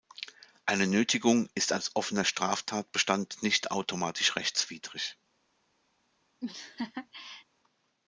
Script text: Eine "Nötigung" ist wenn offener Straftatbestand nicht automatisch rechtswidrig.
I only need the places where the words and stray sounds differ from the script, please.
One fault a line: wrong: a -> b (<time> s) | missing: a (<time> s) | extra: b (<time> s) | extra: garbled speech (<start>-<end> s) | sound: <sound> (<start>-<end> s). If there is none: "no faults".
wrong: wenn -> als (1.7 s)
sound: laugh (6.4-7.5 s)